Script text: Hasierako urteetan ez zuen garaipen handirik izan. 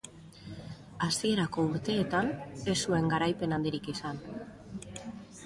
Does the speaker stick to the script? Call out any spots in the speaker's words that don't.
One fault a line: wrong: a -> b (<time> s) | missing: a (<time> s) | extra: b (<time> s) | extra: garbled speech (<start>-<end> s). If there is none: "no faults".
no faults